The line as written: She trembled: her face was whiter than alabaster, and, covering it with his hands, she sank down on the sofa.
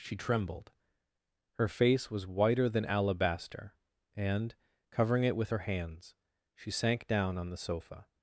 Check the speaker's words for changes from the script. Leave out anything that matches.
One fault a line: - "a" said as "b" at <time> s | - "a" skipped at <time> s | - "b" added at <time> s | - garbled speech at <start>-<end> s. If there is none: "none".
- "his" said as "her" at 5.5 s